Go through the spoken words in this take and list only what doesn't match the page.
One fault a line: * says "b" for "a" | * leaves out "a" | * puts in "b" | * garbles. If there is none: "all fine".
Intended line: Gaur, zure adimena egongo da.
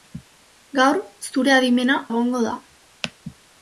all fine